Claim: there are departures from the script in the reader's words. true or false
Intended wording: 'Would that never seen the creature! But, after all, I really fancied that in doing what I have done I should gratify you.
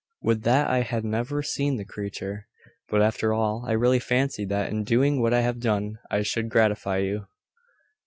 true